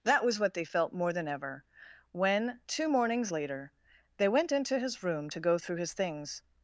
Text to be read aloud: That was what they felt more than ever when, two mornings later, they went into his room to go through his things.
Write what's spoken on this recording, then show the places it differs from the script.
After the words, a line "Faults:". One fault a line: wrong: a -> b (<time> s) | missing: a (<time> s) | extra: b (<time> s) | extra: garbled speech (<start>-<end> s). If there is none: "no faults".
That was what they felt more than ever when, two mornings later, they went into his room to go through his things.
Faults:
no faults